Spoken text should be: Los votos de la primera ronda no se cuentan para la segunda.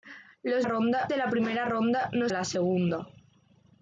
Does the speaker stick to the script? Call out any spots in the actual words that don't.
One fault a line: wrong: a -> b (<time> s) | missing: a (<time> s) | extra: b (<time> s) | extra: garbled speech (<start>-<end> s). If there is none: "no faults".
wrong: votos -> ronda (0.6 s)
missing: se cuentan para (2.3 s)